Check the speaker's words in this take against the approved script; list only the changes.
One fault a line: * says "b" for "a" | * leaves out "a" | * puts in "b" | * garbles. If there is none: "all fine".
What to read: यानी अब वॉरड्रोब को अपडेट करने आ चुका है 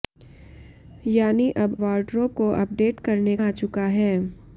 all fine